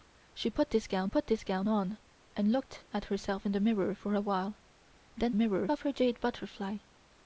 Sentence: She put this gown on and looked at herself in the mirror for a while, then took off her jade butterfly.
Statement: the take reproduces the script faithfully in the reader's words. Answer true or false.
false